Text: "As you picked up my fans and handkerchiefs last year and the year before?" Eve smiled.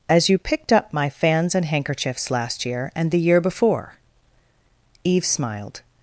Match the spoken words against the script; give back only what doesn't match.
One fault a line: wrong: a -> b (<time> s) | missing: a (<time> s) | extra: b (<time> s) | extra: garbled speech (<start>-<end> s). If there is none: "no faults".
no faults